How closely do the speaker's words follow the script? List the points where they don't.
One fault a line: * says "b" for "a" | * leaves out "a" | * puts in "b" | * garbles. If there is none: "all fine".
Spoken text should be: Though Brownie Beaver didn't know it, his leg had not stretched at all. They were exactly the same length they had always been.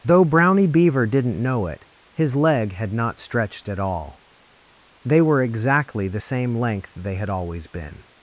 all fine